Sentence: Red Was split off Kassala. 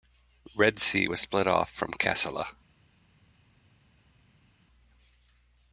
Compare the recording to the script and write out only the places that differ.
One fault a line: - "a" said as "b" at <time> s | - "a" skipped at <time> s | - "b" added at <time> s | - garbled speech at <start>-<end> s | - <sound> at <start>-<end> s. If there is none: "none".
- "Sea" added at 0.8 s
- "from" added at 1.7 s